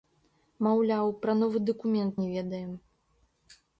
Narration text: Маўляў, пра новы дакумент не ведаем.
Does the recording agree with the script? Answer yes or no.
yes